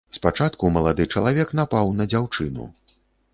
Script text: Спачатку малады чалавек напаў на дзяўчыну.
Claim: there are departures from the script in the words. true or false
false